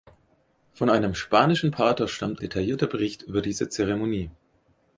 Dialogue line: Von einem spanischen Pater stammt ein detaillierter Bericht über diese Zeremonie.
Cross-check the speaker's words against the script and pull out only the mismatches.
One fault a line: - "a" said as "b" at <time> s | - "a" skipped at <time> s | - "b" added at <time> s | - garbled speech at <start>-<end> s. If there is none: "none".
- "ein" skipped at 2.4 s